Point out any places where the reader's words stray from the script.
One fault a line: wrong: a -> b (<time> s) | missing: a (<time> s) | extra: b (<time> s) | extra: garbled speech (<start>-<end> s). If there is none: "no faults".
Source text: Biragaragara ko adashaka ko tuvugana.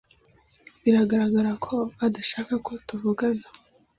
no faults